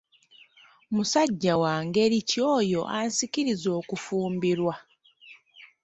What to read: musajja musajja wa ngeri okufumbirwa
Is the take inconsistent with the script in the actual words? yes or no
yes